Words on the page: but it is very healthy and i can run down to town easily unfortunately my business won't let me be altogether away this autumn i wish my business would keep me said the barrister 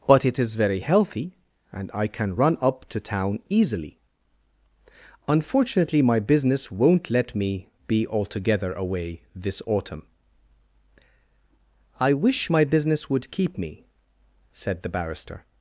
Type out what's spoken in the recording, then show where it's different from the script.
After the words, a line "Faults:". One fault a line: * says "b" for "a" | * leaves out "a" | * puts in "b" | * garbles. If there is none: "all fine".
but it is very healthy and i can run up to town easily unfortunately my business won't let me be altogether away this autumn i wish my business would keep me said the barrister
Faults:
* says "up" for "down"